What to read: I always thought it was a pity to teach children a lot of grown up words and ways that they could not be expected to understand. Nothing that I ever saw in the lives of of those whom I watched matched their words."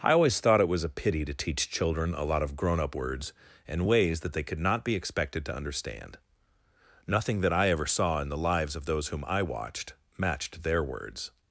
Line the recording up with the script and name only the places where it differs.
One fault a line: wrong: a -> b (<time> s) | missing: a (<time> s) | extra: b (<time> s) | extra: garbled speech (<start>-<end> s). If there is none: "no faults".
missing: of (8.8 s)